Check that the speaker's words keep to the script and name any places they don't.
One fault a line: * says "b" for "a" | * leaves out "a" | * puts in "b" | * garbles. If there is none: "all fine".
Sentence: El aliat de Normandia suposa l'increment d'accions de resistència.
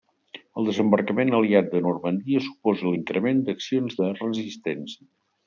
* puts in "desembarcament"